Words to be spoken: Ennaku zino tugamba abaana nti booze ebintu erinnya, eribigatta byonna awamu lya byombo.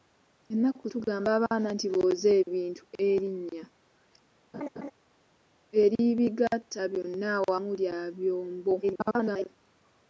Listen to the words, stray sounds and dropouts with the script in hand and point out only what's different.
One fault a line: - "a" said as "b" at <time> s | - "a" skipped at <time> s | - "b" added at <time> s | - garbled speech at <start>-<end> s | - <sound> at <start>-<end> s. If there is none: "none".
- "zino" skipped at 0.8 s
- laugh at 4.5-4.9 s
- garbled speech at 8.8-9.5 s